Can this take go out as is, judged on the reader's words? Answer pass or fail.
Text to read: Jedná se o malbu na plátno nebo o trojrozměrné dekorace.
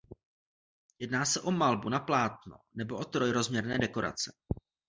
pass